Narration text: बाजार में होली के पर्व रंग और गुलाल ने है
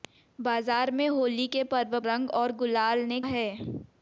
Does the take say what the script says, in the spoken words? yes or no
yes